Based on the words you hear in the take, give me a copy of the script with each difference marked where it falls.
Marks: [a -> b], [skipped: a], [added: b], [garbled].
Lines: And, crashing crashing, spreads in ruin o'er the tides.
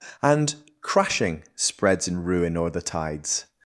And, crashing [skipped: crashing,] spreads in ruin o'er the tides.